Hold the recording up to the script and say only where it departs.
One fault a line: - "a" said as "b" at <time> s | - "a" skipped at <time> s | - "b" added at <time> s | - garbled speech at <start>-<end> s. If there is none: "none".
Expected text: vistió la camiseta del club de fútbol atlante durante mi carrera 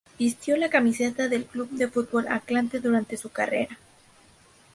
- "mi" said as "su" at 3.2 s